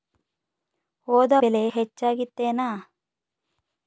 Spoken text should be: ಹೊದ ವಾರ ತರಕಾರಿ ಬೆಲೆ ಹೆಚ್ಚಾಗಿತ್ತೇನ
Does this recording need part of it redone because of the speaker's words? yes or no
yes